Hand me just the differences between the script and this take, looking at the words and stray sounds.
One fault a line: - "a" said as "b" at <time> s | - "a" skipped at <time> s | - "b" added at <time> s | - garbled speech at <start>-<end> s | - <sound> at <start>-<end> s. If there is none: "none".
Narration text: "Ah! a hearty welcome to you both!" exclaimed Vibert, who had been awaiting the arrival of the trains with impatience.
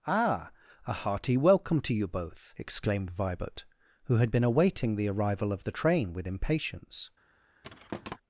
- "trains" said as "train" at 5.7 s
- thud at 7.6-8.2 s